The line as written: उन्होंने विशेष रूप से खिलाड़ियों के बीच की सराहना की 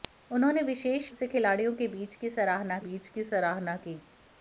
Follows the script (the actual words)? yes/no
no